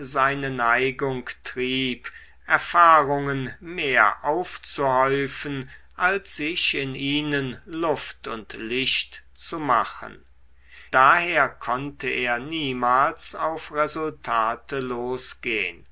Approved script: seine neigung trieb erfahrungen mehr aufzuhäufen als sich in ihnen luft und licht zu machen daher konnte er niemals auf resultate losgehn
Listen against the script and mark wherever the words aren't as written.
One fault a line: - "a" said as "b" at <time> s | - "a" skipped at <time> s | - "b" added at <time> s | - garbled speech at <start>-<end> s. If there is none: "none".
none